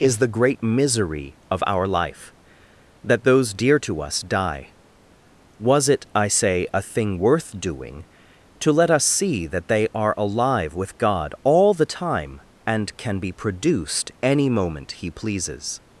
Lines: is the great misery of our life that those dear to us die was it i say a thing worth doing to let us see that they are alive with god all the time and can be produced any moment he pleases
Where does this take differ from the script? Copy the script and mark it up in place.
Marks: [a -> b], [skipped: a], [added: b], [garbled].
is the great misery of our life that those dear to us die was it i say a thing worth doing to let us see that they are alive with god all the time and can be produced any moment he pleases